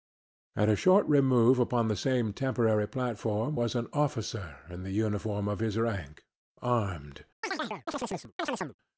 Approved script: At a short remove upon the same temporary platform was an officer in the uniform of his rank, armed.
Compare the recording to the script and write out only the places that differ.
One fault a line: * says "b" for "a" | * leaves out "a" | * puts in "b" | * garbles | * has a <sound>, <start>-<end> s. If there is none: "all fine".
* has a chirp, 7.4-8.8 s